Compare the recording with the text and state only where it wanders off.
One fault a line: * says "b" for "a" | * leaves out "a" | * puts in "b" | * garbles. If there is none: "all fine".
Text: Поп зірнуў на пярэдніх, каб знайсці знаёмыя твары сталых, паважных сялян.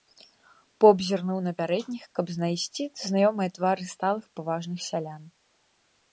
all fine